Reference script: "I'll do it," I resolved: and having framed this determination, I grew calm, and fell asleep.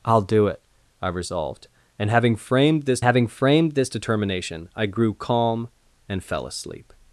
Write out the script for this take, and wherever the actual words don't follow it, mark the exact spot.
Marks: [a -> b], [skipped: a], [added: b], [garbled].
"I'll do it," I resolved: and having framed this [added: having framed this] determination, I grew calm, and fell asleep.